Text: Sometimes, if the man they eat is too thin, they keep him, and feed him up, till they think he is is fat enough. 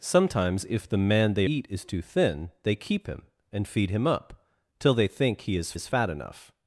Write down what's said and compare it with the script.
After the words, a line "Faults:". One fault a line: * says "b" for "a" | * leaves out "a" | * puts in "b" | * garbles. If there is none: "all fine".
Sometimes, if the man they eat is too thin, they keep him, and feed him up, till they think he is is fat enough.
Faults:
all fine